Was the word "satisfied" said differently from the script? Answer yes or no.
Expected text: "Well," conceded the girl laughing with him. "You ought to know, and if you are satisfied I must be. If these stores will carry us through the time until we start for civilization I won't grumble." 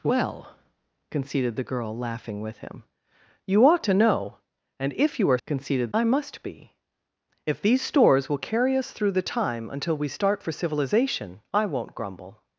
yes